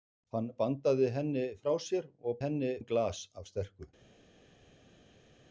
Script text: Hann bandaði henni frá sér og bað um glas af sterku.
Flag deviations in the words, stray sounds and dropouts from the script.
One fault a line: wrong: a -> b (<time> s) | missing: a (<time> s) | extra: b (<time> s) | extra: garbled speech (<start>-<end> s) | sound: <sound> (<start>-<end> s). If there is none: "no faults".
wrong: bað -> henni (2.4 s)